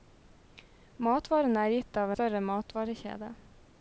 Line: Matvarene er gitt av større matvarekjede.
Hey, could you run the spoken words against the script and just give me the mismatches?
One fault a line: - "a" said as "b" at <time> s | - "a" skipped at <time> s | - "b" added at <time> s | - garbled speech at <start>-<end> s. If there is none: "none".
none